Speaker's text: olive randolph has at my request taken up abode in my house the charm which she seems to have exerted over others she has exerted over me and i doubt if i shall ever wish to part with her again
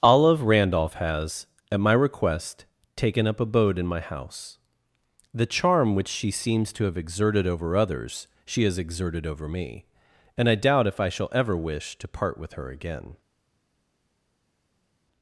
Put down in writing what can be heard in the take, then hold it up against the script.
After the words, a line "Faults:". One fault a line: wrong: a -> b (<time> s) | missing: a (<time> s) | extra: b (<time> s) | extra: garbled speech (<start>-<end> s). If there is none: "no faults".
olive randolph has at my request taken up abode in my house the charm which she seems to have exerted over others she has exerted over me and i doubt if i shall ever wish to part with her again
Faults:
no faults